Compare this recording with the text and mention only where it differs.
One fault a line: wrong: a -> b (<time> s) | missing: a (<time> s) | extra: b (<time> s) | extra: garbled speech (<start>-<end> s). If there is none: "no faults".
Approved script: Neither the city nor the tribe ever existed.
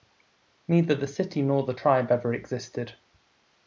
no faults